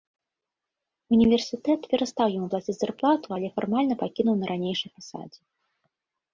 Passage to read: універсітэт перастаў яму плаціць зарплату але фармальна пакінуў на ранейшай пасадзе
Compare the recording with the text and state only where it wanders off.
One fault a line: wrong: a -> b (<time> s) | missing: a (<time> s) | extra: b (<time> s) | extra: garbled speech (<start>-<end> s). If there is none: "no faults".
no faults